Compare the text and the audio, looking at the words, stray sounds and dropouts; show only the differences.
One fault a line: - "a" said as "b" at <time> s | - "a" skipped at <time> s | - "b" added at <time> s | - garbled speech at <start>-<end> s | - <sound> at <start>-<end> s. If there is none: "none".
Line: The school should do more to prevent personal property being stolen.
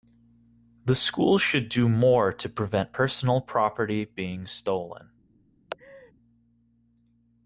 - laugh at 5.7-6.1 s